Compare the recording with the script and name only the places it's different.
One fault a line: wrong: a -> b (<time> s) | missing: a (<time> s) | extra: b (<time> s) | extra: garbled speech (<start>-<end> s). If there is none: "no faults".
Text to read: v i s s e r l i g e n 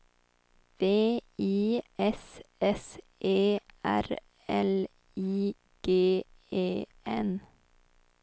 no faults